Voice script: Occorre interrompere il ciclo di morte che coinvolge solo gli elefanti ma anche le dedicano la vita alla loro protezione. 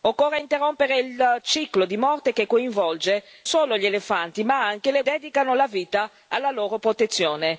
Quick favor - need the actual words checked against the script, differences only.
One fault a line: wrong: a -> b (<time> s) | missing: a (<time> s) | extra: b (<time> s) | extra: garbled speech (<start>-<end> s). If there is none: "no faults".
no faults